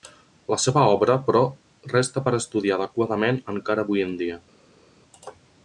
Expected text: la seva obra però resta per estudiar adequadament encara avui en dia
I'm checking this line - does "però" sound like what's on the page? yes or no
yes